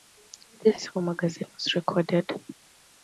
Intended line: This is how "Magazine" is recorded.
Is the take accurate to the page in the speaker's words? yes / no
no